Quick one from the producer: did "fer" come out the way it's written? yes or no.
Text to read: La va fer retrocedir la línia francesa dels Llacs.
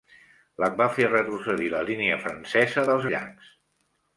yes